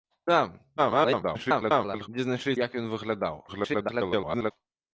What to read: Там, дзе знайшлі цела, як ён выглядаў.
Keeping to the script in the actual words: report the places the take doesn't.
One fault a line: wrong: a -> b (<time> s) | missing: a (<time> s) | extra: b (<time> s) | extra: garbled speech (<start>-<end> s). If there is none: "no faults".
extra: garbled speech (0.8-2.1 s)
missing: цела (2.5 s)
extra: garbled speech (3.5-4.5 s)